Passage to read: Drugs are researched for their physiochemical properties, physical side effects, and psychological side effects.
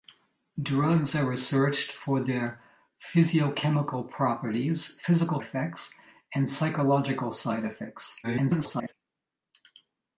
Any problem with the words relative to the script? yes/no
yes